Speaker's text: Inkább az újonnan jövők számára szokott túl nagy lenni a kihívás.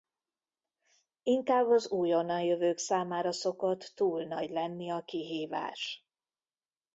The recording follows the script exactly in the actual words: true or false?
true